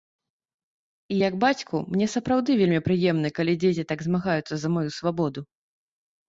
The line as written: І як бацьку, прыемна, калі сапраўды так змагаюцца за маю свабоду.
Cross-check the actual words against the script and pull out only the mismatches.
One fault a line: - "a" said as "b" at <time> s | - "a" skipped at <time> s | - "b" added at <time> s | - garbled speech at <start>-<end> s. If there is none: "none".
- "мне сапраўды вельмі" added at 2.0 s
- "сапраўды" said as "дзеці" at 3.7 s